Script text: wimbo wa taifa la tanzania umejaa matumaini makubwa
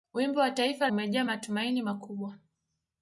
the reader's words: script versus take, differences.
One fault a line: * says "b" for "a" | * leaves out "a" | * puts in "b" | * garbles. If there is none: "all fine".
* leaves out "la tanzania"